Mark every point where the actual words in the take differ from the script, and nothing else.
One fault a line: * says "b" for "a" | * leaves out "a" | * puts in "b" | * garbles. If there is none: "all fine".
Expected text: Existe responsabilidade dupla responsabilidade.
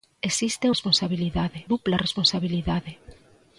all fine